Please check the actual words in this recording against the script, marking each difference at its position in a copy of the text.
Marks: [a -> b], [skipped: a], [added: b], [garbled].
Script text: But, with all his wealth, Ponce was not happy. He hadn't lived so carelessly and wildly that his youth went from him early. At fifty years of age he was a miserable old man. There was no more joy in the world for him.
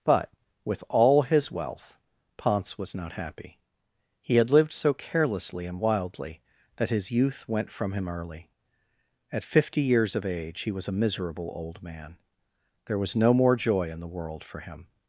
But, with all his wealth, Ponce was not happy. He [hadn't -> had] lived so carelessly and wildly that his youth went from him early. At fifty years of age he was a miserable old man. There was no more joy in the world for him.